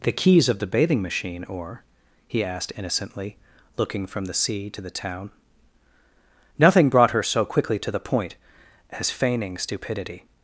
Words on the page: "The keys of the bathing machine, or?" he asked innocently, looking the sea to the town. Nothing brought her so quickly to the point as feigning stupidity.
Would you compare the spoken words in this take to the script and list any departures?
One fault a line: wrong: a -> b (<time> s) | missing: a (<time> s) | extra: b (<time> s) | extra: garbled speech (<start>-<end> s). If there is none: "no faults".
extra: from (4.1 s)